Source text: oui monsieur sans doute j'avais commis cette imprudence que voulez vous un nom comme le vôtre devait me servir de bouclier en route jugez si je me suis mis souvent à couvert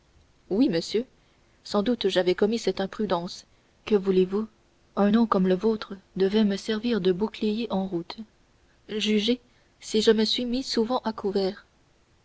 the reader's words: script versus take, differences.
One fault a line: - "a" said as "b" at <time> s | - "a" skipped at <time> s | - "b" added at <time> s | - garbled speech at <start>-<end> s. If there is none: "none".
none